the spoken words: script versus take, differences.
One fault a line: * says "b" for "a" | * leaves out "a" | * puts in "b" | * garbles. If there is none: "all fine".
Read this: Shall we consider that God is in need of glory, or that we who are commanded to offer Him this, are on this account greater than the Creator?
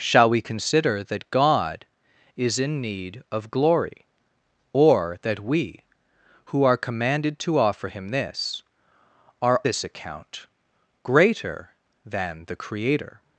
* leaves out "on"